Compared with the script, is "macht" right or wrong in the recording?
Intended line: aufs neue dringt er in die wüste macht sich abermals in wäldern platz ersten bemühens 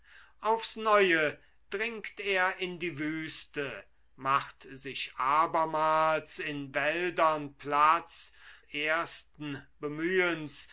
right